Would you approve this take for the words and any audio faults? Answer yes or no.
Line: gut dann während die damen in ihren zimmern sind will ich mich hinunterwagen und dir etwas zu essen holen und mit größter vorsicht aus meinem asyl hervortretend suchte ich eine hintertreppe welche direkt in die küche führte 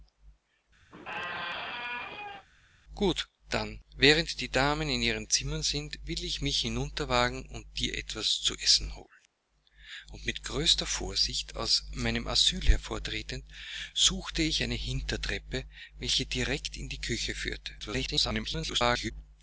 no